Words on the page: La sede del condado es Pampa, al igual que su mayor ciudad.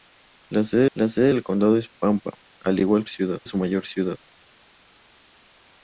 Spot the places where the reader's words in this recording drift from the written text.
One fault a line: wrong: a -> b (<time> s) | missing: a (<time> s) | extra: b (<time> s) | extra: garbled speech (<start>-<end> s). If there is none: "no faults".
extra: la sede (1.0 s)
wrong: que -> ciudad (3.1 s)